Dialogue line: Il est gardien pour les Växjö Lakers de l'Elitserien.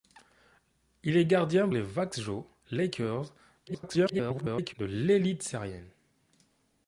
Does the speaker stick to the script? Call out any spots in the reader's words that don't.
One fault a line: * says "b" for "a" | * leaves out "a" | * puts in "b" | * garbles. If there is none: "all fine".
* leaves out "pour"
* garbles